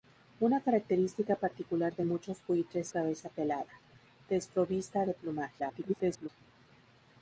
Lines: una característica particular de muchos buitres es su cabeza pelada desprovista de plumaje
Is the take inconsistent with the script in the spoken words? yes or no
yes